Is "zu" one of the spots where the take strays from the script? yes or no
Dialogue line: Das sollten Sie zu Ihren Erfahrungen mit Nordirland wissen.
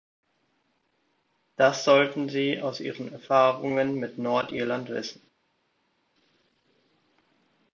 yes